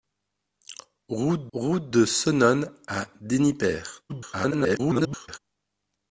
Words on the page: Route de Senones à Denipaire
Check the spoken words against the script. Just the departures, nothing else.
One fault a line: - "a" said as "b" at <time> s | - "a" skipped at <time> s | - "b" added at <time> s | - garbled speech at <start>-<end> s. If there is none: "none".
- "route" added at 1.5 s
- garbled speech at 4.1-5.4 s